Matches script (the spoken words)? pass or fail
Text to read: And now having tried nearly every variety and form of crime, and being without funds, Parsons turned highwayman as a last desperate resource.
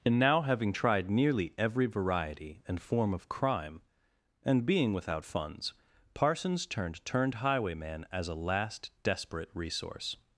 fail